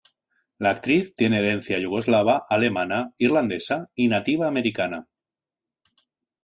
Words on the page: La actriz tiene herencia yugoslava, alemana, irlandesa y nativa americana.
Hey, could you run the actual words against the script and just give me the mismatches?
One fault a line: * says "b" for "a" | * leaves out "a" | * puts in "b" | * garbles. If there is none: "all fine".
all fine